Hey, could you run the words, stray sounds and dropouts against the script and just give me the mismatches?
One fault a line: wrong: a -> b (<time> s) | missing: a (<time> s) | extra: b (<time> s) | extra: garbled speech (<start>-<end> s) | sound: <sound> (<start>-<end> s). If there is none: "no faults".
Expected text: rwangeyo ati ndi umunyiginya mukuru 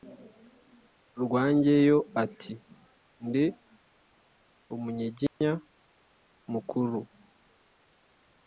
sound: dropout (5.3-5.4 s)